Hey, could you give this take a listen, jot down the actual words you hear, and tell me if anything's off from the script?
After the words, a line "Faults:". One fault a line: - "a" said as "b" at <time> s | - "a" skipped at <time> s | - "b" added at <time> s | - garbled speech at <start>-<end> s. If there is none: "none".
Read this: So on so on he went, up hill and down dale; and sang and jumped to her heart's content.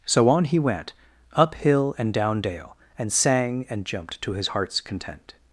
So on he went, up hill and down dale; and sang and jumped to his heart's content.
Faults:
- "so on" skipped at 0.5 s
- "her" said as "his" at 4.3 s